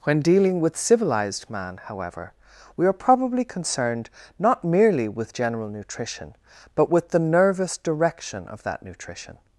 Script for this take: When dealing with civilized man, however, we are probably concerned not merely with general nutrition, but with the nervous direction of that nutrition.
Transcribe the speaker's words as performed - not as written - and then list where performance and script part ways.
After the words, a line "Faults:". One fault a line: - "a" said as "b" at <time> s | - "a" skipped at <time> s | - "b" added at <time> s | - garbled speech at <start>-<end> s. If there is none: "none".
When dealing with civilized man, however, we are probably concerned not merely with general nutrition, but with the nervous direction of that nutrition.
Faults:
none